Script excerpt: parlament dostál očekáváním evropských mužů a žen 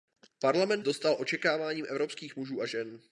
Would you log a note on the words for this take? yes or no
no